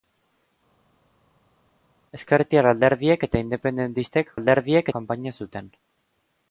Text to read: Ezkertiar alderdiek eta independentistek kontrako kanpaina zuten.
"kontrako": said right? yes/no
no